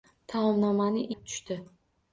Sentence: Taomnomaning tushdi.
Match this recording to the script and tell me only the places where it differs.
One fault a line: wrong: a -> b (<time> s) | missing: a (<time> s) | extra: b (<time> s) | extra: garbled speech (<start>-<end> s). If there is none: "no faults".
no faults